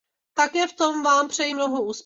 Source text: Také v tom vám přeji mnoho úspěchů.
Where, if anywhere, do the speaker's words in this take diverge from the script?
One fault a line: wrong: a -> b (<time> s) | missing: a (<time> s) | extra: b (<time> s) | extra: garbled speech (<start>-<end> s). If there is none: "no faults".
no faults